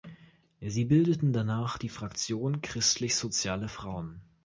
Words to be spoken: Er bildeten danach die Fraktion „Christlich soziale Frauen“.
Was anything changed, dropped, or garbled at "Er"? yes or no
yes